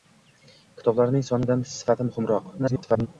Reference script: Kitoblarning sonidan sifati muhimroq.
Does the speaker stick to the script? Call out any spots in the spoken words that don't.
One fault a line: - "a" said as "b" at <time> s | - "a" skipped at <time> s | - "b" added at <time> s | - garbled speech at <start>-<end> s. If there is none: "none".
- garbled speech at 2.6-3.1 s